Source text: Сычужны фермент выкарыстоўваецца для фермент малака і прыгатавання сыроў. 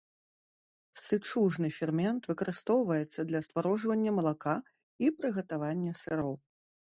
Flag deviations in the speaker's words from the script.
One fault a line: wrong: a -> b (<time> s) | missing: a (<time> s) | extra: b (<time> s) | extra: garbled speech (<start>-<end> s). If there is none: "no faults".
wrong: фермент -> стварожвання (3.5 s)